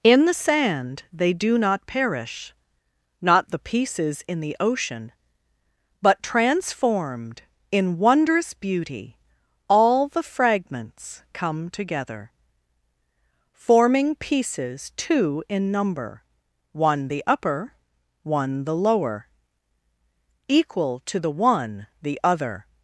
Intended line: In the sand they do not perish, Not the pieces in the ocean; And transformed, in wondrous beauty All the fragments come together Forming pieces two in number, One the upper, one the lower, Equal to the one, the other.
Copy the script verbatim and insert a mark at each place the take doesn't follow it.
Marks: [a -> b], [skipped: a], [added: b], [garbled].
In the sand they do not perish, Not the pieces in the ocean; [And -> But] transformed, in wondrous beauty All the fragments come together Forming pieces two in number, One the upper, one the lower, Equal to the one, the other.